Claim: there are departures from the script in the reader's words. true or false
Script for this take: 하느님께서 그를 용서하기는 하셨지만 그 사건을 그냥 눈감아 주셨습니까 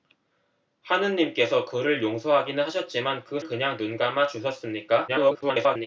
true